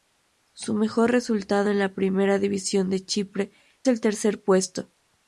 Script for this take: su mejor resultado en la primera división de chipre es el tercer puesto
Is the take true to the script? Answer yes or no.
no